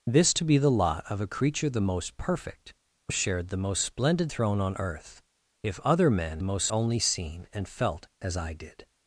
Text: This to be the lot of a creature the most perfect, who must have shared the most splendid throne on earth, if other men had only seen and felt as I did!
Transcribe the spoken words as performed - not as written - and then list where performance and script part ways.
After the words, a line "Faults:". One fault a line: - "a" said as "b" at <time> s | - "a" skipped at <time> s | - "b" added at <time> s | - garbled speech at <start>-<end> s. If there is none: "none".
This to be the lot of a creature the most perfect, who shared the most splendid throne on earth, if other men most only seen and felt as I did!
Faults:
- "must have" skipped at 3.1 s
- "had" said as "most" at 6.4 s